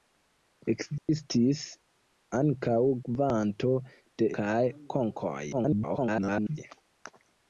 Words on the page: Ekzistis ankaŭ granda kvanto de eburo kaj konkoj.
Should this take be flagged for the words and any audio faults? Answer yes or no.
yes